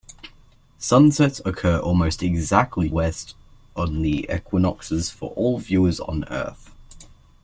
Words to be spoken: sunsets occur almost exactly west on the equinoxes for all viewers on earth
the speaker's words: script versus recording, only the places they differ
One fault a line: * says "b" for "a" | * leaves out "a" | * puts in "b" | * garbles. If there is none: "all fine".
all fine